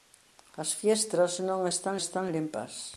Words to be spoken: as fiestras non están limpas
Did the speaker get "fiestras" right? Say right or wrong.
right